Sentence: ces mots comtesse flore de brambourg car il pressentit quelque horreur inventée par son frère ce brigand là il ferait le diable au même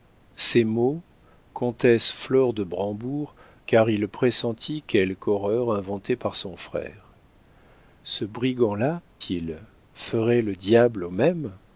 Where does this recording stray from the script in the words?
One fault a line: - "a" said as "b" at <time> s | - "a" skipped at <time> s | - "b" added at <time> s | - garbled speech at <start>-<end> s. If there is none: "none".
none